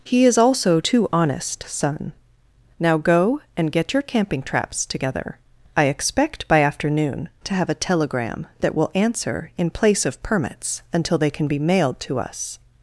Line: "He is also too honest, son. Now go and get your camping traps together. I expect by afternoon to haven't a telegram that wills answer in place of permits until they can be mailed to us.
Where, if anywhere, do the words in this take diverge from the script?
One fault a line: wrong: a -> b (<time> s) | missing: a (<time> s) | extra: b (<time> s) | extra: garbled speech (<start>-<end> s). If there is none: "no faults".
wrong: haven't -> have (7.5 s)
wrong: wills -> will (8.7 s)